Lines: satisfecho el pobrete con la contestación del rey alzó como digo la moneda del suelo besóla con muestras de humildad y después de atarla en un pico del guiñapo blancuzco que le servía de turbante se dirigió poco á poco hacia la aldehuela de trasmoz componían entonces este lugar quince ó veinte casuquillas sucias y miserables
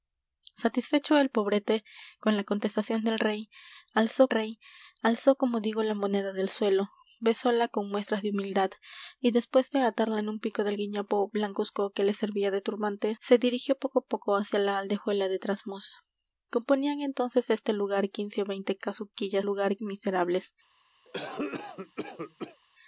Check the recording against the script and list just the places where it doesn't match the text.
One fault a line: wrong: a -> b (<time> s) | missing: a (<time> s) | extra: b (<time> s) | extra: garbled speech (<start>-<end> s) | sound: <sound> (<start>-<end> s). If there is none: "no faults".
extra: rey alzó (4.3 s)
wrong: sucias -> lugar (19.4 s)
sound: cough (21.0-22.6 s)